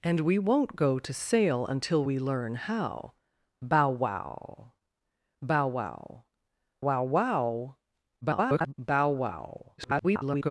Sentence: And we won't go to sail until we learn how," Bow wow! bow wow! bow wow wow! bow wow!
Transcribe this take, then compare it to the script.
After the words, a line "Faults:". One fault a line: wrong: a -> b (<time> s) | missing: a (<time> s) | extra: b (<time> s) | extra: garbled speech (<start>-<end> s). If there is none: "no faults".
And we won't go to sail until we learn how," Bow wow! bow wow! wow wow! [garbled] bow wow! [garbled]
Faults:
missing: bow (6.2 s)
extra: garbled speech (8.2-8.7 s)
extra: garbled speech (9.8-10.5 s)